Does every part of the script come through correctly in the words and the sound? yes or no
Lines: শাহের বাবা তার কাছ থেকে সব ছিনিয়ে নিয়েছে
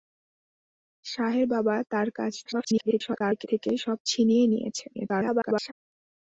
no